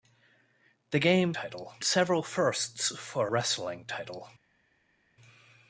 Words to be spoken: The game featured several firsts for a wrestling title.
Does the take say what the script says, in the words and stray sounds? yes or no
no